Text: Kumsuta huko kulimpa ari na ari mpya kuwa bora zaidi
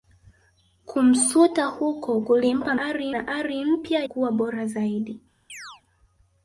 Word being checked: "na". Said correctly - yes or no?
yes